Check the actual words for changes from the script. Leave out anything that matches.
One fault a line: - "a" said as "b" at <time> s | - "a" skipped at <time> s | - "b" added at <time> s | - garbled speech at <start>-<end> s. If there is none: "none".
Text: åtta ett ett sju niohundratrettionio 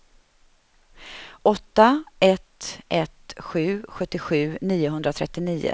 - "sjuttiosju" added at 3.9 s